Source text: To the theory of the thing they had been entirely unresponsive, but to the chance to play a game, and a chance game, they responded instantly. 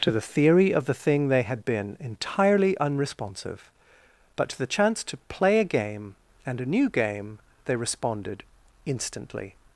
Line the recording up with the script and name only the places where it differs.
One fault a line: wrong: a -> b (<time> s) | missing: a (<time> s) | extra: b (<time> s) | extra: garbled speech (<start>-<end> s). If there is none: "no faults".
wrong: chance -> new (6.7 s)